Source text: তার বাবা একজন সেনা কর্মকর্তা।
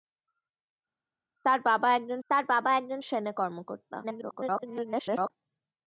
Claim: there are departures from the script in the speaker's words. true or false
true